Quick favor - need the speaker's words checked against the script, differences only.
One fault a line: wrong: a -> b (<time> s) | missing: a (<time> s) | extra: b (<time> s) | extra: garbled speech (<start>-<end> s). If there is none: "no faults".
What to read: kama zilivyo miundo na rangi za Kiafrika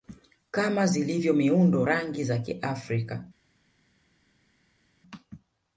missing: na (1.9 s)